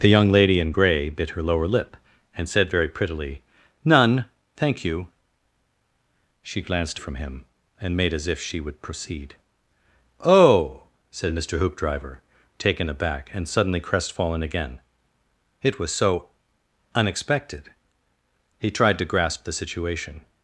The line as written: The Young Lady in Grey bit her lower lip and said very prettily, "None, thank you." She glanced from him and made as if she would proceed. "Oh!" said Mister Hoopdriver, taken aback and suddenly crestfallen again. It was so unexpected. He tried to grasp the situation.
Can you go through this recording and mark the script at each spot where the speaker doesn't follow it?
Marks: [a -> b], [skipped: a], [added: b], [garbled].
The Young Lady in Grey bit her lower lip and said very prettily, "None, thank you." She glanced from him and made as if she would proceed. "Oh!" said Mister Hoopdriver, taken aback and suddenly crestfallen again. It was so unexpected. He tried to grasp the situation.